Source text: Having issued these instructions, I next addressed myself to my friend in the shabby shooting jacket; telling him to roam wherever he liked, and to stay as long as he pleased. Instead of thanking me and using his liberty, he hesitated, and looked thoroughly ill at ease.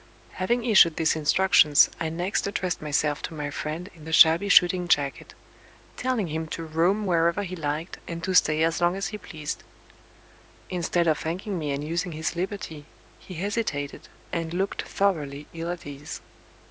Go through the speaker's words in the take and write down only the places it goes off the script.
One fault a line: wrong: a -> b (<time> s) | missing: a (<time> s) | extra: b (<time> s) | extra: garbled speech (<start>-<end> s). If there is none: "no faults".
no faults